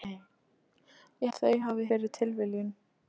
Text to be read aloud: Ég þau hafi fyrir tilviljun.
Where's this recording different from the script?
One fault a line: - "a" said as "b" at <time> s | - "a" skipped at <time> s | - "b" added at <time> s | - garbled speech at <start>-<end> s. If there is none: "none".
none